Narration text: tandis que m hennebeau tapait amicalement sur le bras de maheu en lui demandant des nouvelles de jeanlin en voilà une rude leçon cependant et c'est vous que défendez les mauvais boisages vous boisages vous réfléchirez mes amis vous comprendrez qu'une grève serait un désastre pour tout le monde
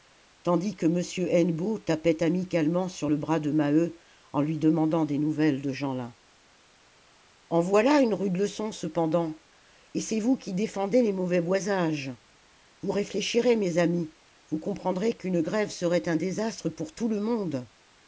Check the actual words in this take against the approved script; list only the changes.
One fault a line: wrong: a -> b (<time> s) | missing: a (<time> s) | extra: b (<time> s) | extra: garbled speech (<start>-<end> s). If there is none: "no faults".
wrong: que -> qui (10.4 s)
missing: boisages vous (12.9 s)